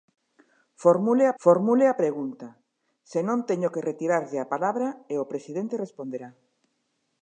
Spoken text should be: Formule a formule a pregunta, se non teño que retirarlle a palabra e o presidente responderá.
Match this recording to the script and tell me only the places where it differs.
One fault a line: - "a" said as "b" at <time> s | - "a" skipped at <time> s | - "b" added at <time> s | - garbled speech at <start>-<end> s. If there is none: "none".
none